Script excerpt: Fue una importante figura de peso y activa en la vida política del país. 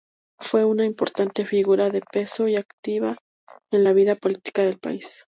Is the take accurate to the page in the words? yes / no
yes